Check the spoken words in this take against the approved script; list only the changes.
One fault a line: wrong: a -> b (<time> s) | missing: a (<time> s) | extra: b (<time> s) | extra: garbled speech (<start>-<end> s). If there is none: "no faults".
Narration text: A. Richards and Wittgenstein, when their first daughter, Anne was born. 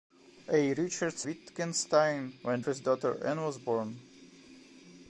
missing: and (1.3 s)
missing: their (2.6 s)